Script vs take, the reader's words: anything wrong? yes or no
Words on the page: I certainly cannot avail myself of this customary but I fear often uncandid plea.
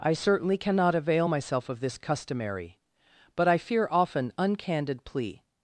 no